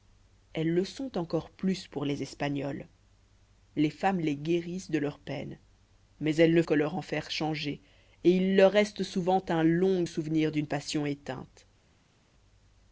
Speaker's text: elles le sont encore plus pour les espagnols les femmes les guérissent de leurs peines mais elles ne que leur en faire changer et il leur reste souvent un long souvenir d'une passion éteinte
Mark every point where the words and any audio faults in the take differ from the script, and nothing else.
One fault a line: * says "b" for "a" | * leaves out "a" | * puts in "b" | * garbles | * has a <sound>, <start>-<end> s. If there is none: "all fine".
all fine